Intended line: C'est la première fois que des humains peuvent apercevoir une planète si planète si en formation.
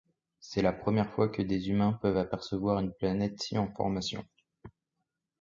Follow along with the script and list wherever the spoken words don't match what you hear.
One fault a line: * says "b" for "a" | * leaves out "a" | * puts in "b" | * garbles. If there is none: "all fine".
* leaves out "planète si"